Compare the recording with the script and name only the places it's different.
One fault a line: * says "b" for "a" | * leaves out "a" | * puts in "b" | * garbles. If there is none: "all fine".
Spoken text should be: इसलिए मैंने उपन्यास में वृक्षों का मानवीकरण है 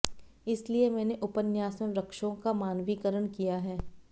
* puts in "किया"